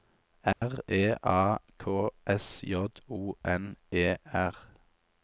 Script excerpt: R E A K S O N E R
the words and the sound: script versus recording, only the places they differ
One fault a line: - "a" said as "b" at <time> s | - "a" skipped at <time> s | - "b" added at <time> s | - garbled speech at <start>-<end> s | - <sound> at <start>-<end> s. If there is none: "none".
- dropout at 0.5-0.6 s
- "J" added at 2.6 s